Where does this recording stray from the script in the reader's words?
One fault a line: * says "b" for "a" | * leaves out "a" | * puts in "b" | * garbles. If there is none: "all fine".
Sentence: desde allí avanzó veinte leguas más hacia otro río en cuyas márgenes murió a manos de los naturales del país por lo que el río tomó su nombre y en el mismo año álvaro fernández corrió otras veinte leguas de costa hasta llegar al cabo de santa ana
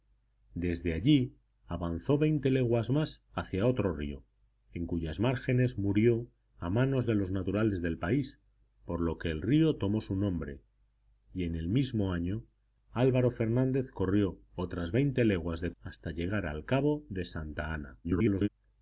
* leaves out "costa"
* garbles